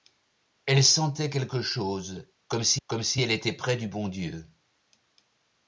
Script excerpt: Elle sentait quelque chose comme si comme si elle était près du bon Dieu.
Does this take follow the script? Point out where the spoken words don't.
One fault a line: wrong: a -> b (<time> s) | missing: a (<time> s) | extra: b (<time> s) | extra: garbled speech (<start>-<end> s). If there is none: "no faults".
no faults